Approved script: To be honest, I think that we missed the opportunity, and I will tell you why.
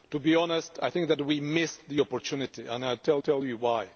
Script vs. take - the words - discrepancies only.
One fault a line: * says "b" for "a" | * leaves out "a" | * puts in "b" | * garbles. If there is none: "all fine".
* puts in "tell"